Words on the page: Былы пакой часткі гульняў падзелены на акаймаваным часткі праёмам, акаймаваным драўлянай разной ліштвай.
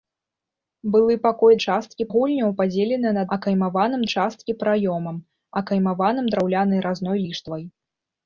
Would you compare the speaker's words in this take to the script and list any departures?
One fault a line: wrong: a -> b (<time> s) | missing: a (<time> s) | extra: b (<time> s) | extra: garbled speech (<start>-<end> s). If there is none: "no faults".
no faults